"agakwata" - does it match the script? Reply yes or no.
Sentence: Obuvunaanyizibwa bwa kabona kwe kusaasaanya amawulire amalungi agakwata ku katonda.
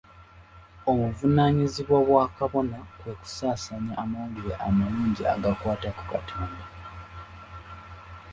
yes